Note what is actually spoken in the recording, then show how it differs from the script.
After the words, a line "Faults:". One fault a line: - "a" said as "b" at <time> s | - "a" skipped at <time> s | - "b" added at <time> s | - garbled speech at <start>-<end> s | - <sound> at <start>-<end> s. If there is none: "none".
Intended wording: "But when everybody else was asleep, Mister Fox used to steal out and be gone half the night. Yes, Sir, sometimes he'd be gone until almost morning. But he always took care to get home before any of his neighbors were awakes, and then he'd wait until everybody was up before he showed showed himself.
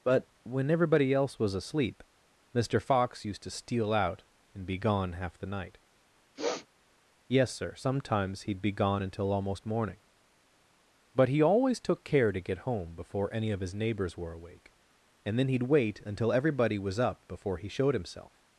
"But when everybody else was asleep, Mister Fox used to steal out and be gone half the night. Yes, Sir, sometimes he'd be gone until almost morning. But he always took care to get home before any of his neighbors were awake, and then he'd wait until everybody was up before he showed himself.
Faults:
- sniff at 6.4-6.7 s
- "awakes" said as "awake" at 14.3 s
- "showed" skipped at 17.9 s